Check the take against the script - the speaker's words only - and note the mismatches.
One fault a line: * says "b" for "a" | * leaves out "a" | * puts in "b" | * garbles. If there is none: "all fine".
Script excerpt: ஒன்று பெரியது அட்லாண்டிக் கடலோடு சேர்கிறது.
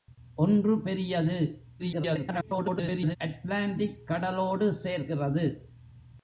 * garbles